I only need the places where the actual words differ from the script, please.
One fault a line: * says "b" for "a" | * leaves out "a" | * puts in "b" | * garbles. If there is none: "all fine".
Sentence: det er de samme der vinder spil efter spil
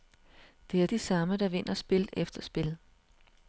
all fine